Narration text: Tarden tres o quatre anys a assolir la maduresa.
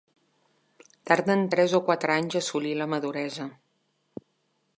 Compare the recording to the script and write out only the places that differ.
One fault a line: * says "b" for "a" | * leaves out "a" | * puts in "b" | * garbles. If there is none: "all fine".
all fine